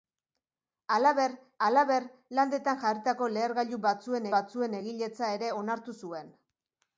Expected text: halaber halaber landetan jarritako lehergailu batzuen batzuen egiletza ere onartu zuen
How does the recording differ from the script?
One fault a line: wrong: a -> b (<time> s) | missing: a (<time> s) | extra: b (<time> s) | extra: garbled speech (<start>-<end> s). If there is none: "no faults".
no faults